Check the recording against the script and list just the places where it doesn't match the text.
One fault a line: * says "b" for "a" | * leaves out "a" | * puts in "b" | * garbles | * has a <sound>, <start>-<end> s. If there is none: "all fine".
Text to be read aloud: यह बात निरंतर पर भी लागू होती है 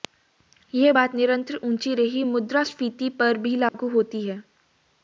* puts in "ऊंची रही मुद्रास्फीति"
* has a dropout, 3.7-3.7 s